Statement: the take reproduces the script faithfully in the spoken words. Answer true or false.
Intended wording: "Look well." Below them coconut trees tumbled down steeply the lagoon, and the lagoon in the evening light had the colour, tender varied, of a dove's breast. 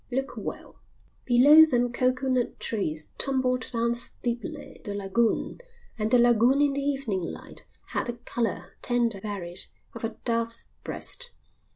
true